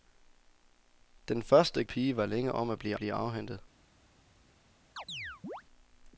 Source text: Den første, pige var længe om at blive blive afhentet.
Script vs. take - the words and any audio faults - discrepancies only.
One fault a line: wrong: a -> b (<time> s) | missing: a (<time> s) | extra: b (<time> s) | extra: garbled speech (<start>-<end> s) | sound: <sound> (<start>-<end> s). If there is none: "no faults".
sound: chirp (5.0-5.6 s)